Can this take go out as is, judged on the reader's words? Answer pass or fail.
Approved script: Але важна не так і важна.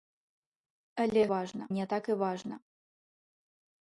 pass